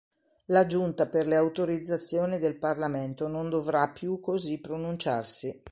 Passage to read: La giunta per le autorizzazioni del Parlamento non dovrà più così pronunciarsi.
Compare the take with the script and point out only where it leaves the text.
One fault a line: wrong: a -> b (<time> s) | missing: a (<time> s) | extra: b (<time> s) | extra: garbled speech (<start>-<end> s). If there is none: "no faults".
no faults